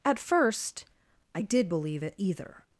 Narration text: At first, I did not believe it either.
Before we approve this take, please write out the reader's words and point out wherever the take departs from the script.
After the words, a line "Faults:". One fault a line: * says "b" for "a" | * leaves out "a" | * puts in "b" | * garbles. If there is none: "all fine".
At first, I did believe it either.
Faults:
* leaves out "not"